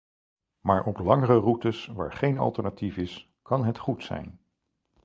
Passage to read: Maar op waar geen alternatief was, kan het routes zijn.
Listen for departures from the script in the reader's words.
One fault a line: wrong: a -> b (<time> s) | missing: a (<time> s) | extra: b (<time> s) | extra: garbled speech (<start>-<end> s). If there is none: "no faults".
extra: langere routes (1.0 s)
wrong: was -> is (3.0 s)
wrong: routes -> goed (3.8 s)